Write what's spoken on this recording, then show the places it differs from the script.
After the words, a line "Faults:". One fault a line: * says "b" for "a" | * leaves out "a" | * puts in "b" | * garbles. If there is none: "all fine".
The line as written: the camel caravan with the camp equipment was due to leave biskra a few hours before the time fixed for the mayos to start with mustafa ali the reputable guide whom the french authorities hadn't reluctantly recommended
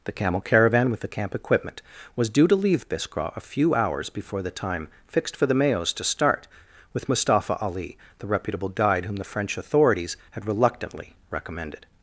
the camel caravan with the camp equipment was due to leave biskra a few hours before the time fixed for the mayos to start with mustafa ali the reputable guide whom the french authorities had reluctantly recommended
Faults:
* says "had" for "hadn't"